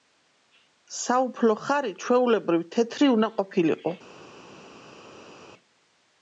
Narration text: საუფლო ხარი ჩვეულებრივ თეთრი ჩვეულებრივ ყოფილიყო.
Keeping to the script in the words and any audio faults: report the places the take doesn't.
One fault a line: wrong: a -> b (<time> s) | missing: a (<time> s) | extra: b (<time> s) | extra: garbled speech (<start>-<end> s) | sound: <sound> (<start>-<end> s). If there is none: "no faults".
wrong: ჩვეულებრივ -> უნდა (3.2 s)